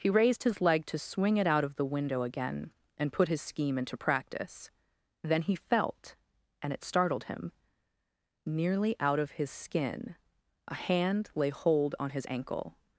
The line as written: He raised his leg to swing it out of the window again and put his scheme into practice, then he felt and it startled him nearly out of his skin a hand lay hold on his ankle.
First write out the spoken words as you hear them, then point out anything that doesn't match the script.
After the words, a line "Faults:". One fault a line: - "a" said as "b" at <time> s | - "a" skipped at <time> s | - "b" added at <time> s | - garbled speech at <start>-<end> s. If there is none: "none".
He raised his leg to swing it out of the window again and put his scheme into practice, then he felt and it startled him nearly out of his skin a hand lay hold on his ankle.
Faults:
none